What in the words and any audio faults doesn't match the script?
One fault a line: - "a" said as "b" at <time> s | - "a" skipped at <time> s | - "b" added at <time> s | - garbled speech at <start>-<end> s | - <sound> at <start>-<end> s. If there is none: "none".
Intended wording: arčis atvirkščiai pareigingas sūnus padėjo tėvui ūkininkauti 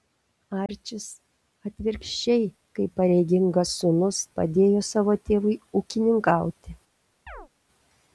- dropout at 0.7-0.7 s
- "kaip" added at 2.8 s
- "savo" added at 4.9 s
- chirp at 7.3-7.5 s